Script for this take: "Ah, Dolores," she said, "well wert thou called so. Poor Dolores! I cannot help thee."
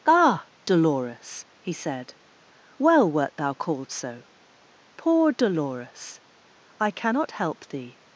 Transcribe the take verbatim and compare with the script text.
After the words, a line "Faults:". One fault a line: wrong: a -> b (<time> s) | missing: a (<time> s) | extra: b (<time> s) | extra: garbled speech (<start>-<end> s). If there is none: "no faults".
"Ah, Dolores," he said, "well wert thou called so. Poor Dolores! I cannot help thee."
Faults:
wrong: she -> he (1.6 s)